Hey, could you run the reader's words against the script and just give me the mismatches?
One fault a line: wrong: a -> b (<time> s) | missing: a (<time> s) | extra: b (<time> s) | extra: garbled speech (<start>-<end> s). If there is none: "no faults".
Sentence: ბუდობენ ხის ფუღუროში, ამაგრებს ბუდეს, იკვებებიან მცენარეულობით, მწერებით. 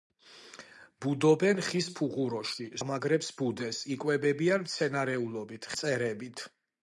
no faults